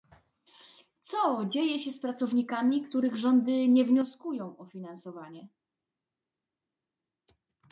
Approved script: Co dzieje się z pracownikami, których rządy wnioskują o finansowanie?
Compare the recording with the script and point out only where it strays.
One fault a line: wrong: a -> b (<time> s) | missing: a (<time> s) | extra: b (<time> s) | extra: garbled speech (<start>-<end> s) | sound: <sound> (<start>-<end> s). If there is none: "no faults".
extra: nie (3.7 s)